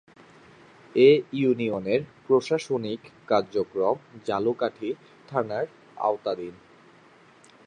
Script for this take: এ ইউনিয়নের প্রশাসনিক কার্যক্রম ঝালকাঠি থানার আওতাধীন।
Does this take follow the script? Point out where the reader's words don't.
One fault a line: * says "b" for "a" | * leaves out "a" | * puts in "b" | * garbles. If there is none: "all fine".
all fine